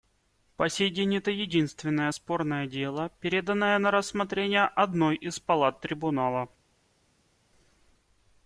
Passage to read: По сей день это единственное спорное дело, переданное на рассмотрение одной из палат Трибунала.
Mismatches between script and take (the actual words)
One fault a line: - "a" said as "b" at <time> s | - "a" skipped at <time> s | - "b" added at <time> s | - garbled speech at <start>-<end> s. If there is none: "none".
none